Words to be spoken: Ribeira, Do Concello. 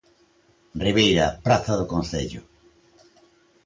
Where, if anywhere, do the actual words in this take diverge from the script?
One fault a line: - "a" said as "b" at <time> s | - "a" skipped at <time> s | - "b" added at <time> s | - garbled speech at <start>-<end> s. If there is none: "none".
- "Praza" added at 1.4 s